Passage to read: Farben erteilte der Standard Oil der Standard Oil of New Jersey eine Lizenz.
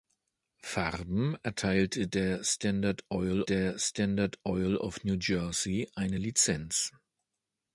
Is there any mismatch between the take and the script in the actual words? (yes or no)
no